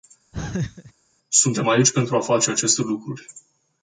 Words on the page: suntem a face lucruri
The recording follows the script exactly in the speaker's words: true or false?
false